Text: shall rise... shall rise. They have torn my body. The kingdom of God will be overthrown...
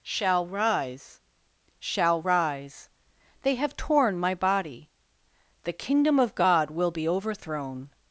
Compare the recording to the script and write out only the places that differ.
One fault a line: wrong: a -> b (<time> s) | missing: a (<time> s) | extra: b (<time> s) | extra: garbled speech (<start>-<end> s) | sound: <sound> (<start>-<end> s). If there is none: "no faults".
no faults